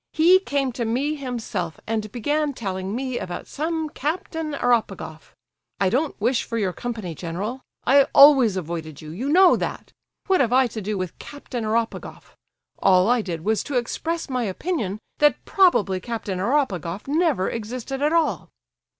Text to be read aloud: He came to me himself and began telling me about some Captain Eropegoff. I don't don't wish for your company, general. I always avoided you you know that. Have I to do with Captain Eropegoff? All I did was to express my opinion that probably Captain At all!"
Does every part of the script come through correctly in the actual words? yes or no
no